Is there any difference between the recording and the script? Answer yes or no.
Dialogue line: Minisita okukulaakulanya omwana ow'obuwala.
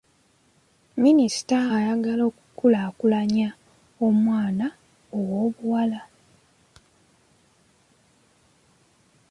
yes